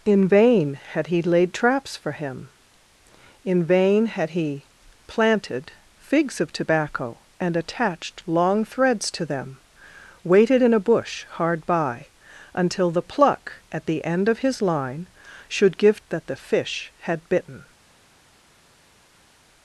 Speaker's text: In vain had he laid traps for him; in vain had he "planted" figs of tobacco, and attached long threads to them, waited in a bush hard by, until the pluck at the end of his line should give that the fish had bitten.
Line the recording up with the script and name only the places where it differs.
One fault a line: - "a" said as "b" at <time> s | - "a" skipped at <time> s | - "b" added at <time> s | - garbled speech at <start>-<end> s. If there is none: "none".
none